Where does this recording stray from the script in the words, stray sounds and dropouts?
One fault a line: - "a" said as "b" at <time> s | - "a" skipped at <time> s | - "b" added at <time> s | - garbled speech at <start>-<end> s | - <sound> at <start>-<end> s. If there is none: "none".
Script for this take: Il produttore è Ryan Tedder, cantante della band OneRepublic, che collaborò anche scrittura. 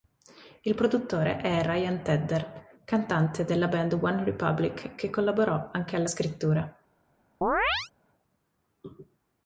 - "alla" added at 6.0 s
- chirp at 7.4-7.9 s